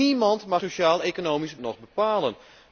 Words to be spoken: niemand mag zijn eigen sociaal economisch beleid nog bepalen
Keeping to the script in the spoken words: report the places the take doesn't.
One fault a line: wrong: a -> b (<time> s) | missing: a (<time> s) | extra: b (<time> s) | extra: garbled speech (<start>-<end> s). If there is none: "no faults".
missing: zijn eigen (0.6 s)
missing: beleid (1.6 s)